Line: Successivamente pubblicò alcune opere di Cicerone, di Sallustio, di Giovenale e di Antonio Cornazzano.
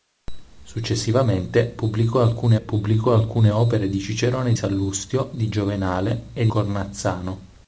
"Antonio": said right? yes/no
no